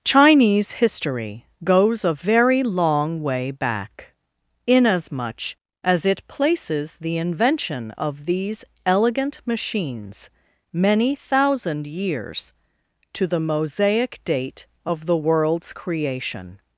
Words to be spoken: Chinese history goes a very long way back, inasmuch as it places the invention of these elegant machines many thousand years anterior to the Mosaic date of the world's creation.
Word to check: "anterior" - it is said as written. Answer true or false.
false